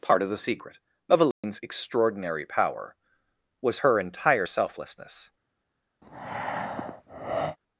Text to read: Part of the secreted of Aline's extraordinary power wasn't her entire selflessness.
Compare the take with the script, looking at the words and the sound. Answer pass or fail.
fail